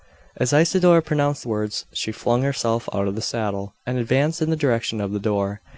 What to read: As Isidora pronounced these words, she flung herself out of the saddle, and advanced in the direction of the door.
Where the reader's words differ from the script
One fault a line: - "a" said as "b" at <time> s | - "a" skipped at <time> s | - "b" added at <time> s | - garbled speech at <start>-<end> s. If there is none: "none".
- "these" skipped at 1.4 s